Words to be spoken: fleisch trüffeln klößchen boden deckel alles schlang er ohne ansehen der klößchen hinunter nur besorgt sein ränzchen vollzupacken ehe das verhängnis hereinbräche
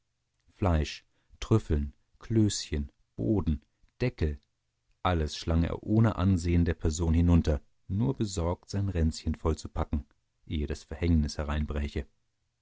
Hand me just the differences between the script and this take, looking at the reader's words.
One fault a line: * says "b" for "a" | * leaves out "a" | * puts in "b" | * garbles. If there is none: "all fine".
* says "person" for "klößchen"